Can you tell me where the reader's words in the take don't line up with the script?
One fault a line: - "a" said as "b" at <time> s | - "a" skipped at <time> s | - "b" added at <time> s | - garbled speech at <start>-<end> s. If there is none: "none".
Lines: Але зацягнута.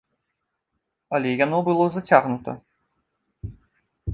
- "яно было" added at 1.4 s